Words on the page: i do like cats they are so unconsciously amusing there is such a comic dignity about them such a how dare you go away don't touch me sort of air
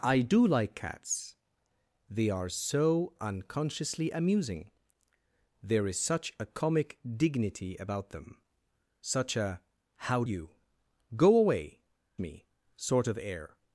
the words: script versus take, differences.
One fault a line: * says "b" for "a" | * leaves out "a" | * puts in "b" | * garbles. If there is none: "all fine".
* leaves out "dare"
* leaves out "don't touch"